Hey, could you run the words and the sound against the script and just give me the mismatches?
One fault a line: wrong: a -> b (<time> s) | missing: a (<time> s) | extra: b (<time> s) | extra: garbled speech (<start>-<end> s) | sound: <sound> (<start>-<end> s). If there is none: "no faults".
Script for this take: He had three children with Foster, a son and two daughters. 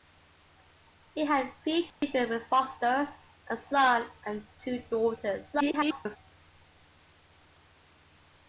sound: dropout (1.9-2.0 s)
extra: garbled speech (5.5-6.2 s)